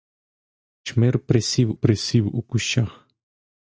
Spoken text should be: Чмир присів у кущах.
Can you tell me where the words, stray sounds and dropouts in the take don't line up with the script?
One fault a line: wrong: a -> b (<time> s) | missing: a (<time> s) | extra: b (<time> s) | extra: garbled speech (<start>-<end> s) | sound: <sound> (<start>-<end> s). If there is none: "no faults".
extra: присів (1.7 s)